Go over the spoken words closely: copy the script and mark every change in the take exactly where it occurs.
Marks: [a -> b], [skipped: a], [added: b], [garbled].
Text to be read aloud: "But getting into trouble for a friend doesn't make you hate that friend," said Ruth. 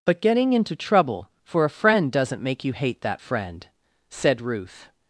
"But getting into trouble for a friend doesn't make you hate that friend," said Ruth.